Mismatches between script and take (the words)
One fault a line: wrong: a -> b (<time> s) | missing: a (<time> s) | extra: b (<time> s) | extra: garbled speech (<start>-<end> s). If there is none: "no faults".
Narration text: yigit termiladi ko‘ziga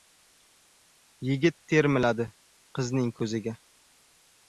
extra: qizning (2.8 s)